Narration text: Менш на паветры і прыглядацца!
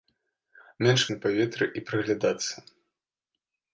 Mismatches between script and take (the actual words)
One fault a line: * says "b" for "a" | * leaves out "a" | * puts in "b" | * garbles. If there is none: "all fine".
all fine